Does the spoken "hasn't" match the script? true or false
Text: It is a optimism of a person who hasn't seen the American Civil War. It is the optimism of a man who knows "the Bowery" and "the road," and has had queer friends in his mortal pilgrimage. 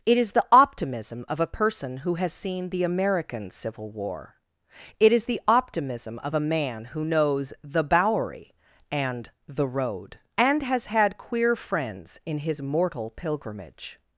false